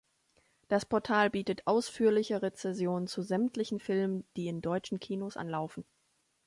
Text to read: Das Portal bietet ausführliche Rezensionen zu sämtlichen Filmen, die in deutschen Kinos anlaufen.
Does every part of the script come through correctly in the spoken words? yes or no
yes